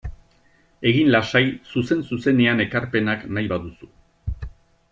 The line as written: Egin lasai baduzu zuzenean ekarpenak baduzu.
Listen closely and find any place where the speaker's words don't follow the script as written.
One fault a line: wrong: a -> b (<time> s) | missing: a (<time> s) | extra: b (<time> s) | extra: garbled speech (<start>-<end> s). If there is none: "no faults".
wrong: baduzu -> zuzen (1.7 s)
extra: nahi (3.4 s)